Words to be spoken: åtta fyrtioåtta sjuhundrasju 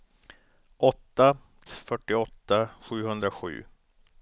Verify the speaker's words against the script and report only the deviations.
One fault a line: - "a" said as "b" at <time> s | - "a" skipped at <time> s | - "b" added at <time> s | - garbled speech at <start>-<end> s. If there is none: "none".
none